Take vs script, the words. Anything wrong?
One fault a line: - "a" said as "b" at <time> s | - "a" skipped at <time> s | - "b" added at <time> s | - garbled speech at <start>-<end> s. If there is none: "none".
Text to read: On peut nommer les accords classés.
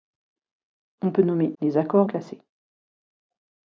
none